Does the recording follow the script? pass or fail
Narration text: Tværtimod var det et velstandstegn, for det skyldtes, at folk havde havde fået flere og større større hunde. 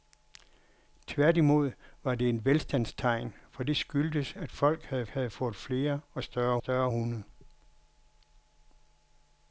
pass